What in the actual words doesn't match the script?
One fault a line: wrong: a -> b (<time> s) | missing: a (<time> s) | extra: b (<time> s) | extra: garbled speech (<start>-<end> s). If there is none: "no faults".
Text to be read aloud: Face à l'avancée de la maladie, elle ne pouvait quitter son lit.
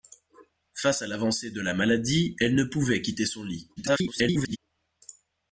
extra: garbled speech (3.8-4.6 s)